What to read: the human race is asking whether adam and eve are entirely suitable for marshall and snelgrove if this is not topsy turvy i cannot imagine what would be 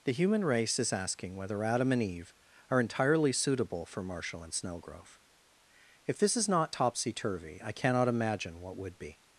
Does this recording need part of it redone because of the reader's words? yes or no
no